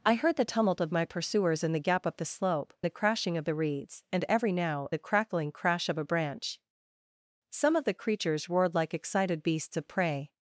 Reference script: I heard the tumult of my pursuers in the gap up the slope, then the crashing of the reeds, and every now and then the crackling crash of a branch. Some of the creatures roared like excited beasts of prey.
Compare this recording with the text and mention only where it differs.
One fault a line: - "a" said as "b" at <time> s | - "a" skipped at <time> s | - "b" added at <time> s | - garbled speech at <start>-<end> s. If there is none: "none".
- "then" skipped at 2.7 s
- "and then" skipped at 4.9 s